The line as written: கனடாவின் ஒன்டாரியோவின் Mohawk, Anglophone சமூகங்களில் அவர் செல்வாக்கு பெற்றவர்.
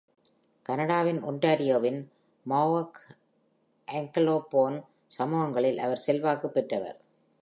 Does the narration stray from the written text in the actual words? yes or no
no